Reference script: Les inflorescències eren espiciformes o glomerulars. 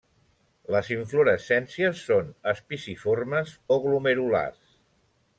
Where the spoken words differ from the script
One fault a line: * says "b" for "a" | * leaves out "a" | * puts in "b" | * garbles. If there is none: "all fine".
* says "són" for "eren"